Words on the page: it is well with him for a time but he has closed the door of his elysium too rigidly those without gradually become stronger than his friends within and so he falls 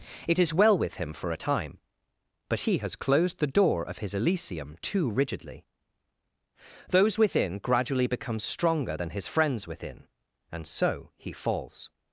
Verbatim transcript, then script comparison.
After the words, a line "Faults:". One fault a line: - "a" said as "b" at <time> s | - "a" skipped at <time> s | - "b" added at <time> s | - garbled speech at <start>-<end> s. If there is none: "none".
it is well with him for a time but he has closed the door of his elysium too rigidly those within gradually become stronger than his friends within and so he falls
Faults:
- "without" said as "within" at 7.2 s